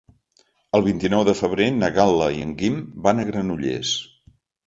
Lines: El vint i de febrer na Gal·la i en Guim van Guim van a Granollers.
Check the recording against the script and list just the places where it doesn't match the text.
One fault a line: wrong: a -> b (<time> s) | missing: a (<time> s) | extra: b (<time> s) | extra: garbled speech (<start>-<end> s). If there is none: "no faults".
extra: nou (1.1 s)
missing: Guim van (3.2 s)